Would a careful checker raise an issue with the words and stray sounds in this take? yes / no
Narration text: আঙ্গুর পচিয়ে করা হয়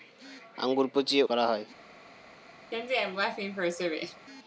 yes